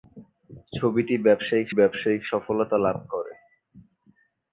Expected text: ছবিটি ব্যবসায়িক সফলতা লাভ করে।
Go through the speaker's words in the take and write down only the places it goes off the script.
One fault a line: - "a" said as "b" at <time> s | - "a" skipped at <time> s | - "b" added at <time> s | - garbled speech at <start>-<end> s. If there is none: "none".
- "ব্যবসায়িক" added at 1.8 s